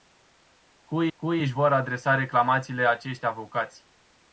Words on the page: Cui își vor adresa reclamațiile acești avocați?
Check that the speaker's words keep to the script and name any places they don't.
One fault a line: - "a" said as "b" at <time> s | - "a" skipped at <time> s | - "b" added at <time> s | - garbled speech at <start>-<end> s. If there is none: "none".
- "cui" added at 1.1 s